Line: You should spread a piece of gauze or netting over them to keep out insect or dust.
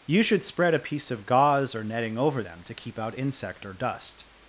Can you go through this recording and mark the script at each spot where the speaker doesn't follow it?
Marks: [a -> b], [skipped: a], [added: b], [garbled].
You should spread a piece of gauze or netting over them to keep out insect or dust.